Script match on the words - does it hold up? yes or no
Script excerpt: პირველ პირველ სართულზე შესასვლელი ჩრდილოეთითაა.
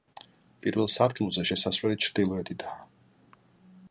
no